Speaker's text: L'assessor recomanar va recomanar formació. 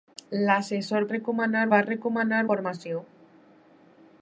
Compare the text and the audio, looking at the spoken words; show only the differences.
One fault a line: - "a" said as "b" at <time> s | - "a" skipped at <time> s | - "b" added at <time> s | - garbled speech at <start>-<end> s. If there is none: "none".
none